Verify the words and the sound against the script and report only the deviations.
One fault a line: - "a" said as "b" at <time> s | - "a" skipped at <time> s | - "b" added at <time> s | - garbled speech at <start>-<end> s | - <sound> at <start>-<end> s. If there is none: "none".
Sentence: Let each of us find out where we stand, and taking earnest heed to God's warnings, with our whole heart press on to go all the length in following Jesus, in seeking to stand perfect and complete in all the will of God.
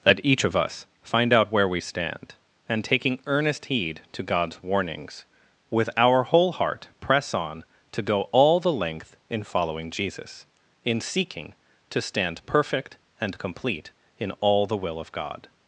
none